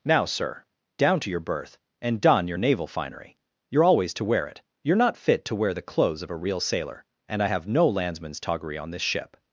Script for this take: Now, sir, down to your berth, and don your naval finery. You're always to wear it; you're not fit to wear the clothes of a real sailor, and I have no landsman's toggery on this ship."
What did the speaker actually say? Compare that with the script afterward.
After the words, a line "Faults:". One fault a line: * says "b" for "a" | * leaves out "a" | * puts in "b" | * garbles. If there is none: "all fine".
Now, sir, down to your berth, and don your naval finery. You're always to wear it; you're not fit to wear the clothes of a real sailor, and I have no landsman's toggery on this ship."
Faults:
all fine